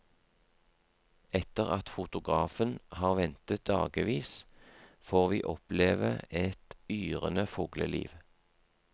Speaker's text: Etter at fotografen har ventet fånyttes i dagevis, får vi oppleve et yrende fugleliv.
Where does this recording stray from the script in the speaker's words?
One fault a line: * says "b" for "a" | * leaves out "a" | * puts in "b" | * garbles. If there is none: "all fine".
* leaves out "fånyttes i"